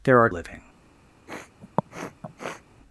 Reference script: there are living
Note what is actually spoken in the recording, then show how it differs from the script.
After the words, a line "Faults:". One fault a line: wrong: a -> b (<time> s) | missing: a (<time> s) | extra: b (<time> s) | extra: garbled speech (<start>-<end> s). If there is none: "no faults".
there are living
Faults:
no faults